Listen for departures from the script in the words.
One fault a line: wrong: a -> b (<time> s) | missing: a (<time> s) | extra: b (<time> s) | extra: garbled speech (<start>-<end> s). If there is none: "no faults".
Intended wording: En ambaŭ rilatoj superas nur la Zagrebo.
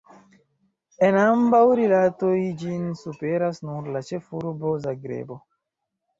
extra: ĝin (2.6 s)
extra: ĉefurbo (4.1 s)